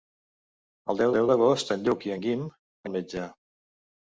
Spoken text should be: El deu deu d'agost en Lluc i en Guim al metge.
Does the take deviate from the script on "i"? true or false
false